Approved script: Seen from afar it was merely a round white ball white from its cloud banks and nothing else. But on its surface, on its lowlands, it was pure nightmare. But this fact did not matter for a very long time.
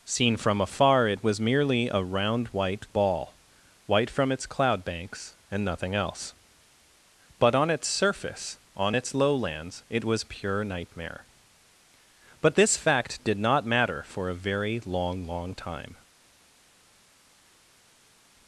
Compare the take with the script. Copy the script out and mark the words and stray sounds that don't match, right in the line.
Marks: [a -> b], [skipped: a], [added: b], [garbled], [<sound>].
Seen from afar it was merely a round white ball white from its cloud banks and nothing else. But on its surface, on its lowlands, it was pure nightmare. But this fact did not matter for a very long [added: long] time.